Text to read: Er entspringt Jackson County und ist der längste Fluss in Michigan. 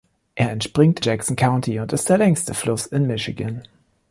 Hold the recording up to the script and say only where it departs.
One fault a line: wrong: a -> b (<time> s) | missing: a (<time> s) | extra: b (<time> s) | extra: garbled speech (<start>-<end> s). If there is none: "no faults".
no faults